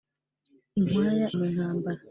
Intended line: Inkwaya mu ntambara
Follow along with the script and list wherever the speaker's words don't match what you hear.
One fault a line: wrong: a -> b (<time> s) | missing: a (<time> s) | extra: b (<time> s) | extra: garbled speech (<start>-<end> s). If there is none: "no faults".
no faults